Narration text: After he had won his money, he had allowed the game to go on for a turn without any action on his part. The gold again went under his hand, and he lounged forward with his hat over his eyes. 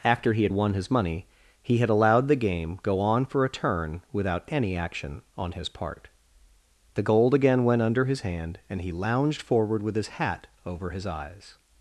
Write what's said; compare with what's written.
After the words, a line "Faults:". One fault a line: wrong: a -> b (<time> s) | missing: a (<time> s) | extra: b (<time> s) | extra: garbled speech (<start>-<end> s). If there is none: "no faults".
After he had won his money, he had allowed the game go on for a turn without any action on his part. The gold again went under his hand, and he lounged forward with his hat over his eyes.
Faults:
missing: to (2.8 s)